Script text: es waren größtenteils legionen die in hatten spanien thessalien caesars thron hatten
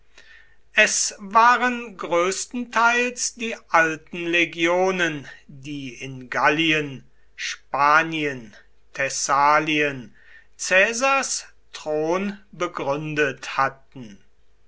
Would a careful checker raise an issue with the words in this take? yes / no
yes